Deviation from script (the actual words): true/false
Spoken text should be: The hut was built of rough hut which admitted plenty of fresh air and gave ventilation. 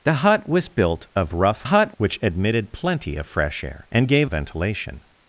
false